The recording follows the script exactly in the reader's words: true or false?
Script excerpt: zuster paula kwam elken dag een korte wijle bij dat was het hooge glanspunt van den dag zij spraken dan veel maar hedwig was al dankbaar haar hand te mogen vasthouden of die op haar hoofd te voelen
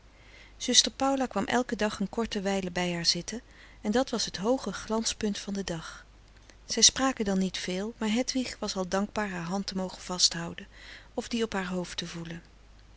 false